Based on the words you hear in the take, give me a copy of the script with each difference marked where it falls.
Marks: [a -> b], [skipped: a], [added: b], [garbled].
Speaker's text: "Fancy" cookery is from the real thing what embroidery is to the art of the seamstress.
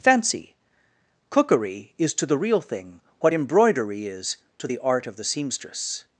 "Fancy" cookery is [from -> to] the real thing what embroidery is to the art of the seamstress.